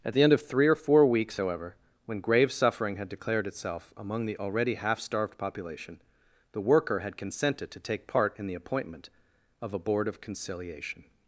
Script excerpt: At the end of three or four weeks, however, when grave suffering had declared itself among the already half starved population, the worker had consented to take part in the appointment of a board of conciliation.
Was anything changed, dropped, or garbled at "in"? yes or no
no